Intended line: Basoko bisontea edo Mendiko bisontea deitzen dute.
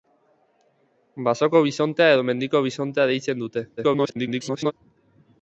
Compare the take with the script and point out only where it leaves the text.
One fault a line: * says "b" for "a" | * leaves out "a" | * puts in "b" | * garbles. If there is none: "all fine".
* garbles